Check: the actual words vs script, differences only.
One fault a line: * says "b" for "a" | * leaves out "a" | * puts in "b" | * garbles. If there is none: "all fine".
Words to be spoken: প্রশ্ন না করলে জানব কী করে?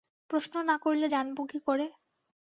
all fine